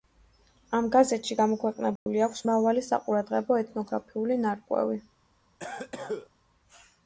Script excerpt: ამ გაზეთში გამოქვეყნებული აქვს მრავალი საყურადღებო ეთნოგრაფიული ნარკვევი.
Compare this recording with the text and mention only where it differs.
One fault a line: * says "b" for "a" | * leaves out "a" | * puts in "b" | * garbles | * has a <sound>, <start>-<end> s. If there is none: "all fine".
* has a dropout, 2.0-2.1 s
* has a cough, 5.6-6.3 s